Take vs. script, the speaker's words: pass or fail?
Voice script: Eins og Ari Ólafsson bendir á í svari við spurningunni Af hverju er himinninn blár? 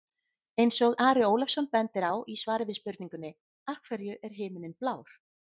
pass